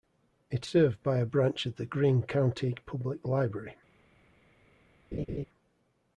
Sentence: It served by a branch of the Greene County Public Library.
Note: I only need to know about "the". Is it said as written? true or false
true